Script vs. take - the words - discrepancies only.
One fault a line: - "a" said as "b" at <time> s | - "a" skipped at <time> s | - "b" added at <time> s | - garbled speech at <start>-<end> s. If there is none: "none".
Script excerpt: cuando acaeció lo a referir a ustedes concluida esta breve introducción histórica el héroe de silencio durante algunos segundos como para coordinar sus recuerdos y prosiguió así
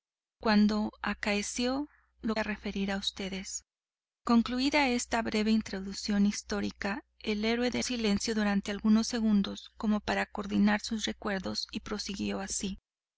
none